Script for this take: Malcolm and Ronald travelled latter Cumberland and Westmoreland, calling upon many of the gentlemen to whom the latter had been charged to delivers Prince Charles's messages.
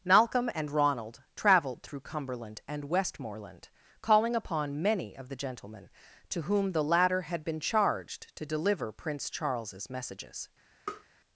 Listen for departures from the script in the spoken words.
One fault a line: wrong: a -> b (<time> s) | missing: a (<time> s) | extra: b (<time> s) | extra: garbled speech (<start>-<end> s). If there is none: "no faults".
wrong: latter -> through (1.8 s)
wrong: delivers -> deliver (8.4 s)